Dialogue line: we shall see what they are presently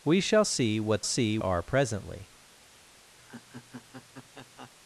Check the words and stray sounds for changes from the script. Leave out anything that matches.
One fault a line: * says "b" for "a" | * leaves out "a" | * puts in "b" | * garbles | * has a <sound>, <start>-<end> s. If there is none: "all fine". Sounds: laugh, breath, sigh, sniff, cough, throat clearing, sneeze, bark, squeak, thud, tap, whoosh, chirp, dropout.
* says "see" for "they"
* has a laugh, 3.2-4.7 s